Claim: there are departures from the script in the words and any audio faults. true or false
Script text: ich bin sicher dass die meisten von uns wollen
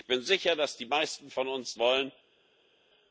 false